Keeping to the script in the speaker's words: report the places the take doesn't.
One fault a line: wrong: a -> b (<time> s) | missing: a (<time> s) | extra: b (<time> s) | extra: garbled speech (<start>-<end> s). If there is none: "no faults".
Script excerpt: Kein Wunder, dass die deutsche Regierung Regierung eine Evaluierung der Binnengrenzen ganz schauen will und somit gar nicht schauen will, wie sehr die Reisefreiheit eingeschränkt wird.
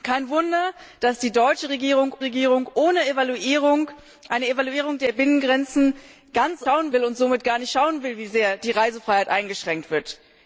no faults